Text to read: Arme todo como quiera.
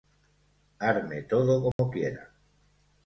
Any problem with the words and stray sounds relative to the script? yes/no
yes